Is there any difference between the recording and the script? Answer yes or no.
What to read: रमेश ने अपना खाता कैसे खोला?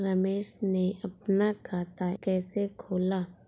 no